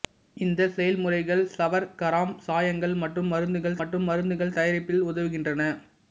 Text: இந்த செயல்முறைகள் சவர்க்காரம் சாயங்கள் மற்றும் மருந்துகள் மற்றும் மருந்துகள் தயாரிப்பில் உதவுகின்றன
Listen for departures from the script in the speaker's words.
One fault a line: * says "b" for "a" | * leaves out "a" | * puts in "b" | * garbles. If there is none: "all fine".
all fine